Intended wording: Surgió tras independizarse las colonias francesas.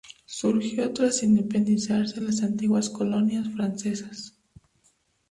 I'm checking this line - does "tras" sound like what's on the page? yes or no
yes